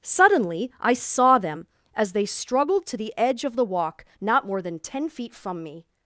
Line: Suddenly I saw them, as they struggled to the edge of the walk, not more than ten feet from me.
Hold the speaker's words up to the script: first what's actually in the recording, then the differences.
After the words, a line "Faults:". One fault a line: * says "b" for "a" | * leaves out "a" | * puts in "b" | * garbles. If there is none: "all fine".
Suddenly I saw them, as they struggled to the edge of the walk, not more than ten feet from me.
Faults:
all fine